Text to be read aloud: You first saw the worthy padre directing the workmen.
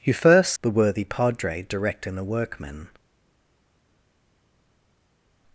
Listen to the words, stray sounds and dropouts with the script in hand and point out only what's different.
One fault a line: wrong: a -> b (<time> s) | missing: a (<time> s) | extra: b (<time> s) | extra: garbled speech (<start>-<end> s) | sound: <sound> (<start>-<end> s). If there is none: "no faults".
missing: saw (0.5 s)